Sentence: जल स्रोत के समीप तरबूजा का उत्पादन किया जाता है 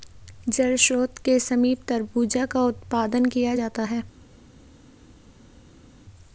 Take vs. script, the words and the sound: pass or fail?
pass